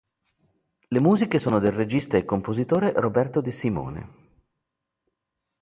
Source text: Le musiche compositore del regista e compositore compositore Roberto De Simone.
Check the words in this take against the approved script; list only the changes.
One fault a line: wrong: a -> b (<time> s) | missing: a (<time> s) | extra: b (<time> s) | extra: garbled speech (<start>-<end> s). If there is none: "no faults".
wrong: compositore -> sono (1.4 s)
missing: compositore (2.9 s)